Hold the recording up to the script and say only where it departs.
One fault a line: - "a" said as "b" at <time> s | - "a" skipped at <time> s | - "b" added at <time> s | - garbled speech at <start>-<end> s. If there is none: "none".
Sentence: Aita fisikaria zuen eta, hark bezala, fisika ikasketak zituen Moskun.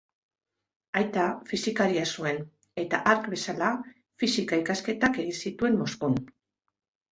- "egin" added at 5.2 s